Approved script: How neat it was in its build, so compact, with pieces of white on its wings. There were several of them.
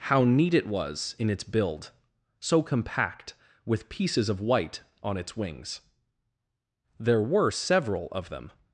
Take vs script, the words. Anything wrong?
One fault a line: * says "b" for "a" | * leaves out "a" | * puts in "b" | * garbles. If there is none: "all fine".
all fine